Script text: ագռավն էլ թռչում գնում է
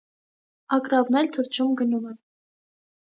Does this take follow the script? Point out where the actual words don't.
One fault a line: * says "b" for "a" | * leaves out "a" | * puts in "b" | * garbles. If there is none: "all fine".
all fine